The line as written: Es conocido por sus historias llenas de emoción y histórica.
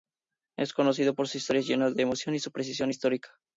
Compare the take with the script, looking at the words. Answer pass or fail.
fail